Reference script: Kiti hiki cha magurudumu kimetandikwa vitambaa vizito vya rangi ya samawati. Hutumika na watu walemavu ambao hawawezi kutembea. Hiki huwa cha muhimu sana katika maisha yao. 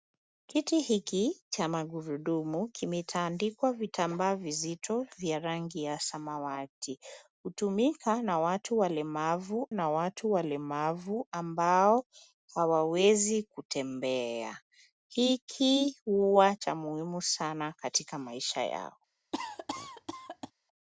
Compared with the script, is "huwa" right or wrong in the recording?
right